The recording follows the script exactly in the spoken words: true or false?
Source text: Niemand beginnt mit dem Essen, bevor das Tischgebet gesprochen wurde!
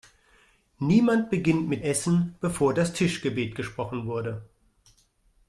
false